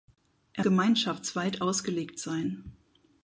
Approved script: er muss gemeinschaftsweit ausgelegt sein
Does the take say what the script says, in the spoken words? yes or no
no